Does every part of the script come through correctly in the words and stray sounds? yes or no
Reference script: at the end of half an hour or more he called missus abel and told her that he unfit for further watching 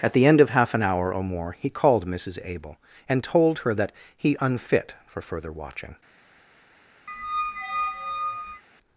no